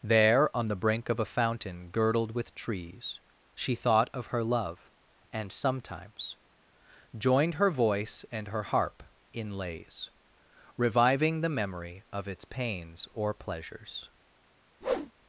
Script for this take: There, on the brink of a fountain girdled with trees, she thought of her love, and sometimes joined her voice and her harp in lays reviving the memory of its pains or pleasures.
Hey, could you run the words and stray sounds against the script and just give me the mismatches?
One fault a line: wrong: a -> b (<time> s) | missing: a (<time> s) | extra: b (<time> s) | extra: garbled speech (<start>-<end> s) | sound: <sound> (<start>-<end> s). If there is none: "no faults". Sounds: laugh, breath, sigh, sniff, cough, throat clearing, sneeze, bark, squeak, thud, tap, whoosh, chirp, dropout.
sound: whoosh (14.8-15.1 s)